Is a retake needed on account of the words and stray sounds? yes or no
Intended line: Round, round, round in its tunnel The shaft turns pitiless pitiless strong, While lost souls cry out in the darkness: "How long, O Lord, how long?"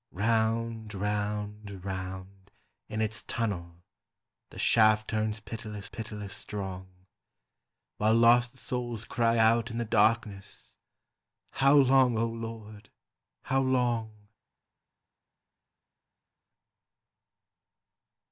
no